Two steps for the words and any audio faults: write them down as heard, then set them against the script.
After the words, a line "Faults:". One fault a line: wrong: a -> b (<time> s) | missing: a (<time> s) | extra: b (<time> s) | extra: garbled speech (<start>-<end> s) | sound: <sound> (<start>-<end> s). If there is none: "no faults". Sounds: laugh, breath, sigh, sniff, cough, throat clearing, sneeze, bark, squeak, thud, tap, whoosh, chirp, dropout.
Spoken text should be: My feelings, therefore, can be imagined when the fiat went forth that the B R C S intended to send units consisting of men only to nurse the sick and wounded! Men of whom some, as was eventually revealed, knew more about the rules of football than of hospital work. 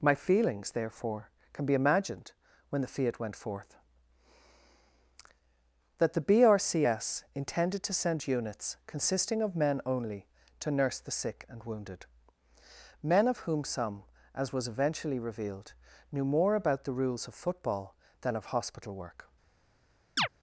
My feelings, therefore, can be imagined when the fiat went forth that the B R C S intended to send units consisting of men only to nurse the sick and wounded! Men of whom some, as was eventually revealed, knew more about the rules of football than of hospital work.
Faults:
sound: chirp (20.2-20.3 s)